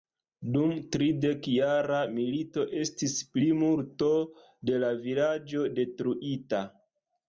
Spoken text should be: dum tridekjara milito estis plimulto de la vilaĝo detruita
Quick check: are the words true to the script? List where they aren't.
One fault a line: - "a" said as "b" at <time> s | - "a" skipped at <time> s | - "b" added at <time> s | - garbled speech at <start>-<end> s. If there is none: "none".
none